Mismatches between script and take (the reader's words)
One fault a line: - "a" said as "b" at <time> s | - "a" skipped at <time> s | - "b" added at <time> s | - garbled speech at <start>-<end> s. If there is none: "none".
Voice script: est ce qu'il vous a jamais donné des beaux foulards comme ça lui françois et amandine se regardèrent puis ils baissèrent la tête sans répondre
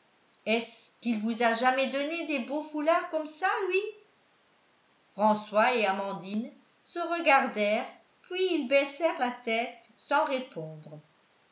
none